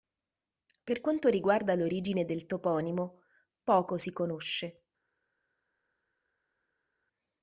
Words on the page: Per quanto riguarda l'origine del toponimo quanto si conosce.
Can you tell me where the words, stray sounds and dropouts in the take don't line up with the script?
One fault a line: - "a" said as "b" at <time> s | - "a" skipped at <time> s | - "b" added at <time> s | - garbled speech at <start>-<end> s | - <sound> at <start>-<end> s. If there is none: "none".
- "quanto" said as "poco" at 3.6 s